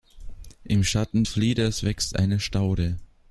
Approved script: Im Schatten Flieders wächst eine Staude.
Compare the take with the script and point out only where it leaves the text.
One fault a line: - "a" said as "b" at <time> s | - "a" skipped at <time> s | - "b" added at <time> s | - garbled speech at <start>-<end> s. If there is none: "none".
none